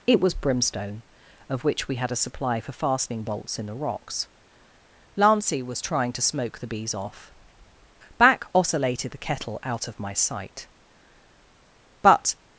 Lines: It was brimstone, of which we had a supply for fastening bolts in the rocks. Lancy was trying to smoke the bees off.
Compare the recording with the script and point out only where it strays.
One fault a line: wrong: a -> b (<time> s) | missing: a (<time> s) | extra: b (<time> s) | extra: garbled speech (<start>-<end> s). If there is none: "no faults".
extra: Back oscillated the kettle out of my sight But (8.2 s)